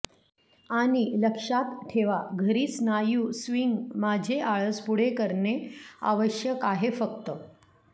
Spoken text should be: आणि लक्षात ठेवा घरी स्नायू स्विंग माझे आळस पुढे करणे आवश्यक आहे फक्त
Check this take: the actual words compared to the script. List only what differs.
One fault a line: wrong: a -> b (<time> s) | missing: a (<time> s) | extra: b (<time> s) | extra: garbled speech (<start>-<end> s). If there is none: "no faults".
no faults